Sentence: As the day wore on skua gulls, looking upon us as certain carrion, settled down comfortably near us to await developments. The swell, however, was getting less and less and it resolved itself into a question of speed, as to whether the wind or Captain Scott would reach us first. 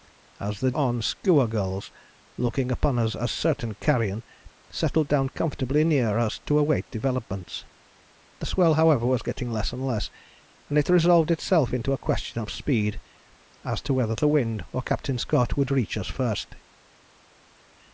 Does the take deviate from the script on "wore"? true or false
true